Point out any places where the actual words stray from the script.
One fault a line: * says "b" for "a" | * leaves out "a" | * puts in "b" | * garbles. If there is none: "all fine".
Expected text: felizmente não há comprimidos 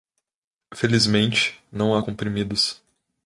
all fine